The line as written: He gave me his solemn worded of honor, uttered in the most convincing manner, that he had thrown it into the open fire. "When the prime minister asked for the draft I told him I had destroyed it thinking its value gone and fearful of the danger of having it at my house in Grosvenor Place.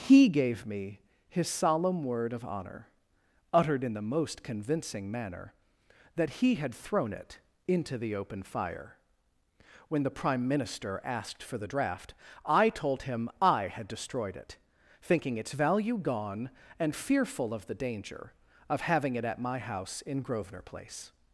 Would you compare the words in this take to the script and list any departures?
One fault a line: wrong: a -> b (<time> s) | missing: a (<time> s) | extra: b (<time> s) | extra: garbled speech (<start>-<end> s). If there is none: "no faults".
wrong: worded -> word (2.0 s)